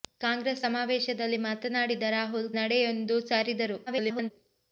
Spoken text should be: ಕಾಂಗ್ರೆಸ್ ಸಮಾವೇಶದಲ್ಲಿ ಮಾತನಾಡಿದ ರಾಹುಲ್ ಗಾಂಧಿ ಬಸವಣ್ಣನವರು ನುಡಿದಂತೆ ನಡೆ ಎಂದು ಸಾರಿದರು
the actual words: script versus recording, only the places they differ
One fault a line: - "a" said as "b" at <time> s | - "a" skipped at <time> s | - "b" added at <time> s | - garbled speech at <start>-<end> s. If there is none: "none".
- "ಗಾಂಧಿ ಬಸವಣ್ಣನವರು ನುಡಿದಂತೆ" skipped at 2.5 s
- garbled speech at 3.9-4.3 s